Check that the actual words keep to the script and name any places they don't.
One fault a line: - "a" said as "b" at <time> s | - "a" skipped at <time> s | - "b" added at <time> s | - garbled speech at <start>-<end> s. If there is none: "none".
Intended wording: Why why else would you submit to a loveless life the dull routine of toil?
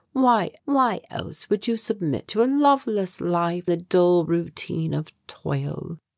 none